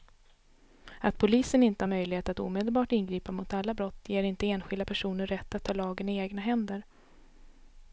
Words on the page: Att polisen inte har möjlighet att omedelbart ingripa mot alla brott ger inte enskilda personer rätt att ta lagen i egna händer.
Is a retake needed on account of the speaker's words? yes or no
no